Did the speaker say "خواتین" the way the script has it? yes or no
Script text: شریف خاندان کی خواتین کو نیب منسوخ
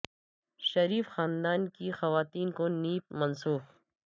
yes